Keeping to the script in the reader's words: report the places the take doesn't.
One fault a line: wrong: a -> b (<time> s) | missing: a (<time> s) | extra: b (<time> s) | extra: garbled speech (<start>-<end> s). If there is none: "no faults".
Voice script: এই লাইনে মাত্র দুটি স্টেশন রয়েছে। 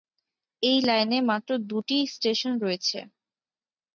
no faults